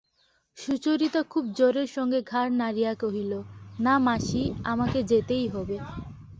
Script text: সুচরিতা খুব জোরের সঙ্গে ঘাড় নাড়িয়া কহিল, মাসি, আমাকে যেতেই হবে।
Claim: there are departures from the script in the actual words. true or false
true